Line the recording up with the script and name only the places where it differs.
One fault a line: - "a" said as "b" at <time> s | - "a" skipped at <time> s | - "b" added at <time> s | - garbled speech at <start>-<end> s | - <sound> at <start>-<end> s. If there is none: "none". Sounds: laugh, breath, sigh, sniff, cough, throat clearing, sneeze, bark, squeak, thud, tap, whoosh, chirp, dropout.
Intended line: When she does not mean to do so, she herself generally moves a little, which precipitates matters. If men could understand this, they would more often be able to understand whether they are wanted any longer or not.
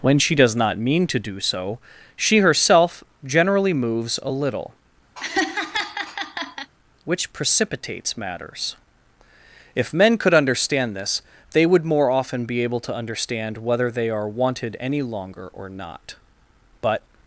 - laugh at 5.2-6.7 s
- "But" added at 16.8 s